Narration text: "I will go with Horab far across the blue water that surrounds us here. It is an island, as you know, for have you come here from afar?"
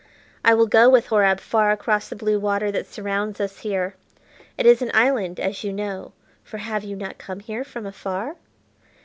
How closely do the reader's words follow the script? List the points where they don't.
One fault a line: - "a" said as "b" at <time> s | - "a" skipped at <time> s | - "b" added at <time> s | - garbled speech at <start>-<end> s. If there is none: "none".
- "not" added at 7.0 s